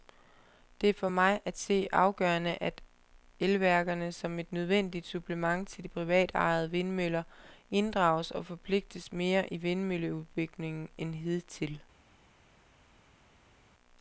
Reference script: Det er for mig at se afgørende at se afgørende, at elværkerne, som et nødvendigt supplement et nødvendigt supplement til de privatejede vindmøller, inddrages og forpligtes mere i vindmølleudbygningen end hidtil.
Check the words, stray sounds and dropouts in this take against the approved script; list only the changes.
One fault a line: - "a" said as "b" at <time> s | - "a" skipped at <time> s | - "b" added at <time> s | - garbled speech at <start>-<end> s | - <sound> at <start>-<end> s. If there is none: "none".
- "se afgørende at" skipped at 2.8 s
- "et nødvendigt supplement" skipped at 5.7 s